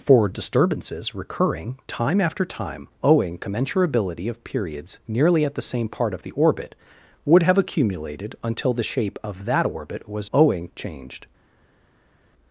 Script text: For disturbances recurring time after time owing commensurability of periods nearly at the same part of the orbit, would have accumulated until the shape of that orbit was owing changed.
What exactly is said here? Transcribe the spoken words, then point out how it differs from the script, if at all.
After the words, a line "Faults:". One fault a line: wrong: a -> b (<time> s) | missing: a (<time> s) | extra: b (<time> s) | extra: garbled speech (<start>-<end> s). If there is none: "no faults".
For disturbances recurring time after time owing commensurability of periods nearly at the same part of the orbit, would have accumulated until the shape of that orbit was owing changed.
Faults:
no faults